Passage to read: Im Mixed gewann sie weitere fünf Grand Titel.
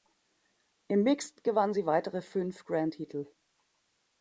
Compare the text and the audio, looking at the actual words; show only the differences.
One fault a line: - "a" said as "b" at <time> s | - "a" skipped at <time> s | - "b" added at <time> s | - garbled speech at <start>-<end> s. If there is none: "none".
none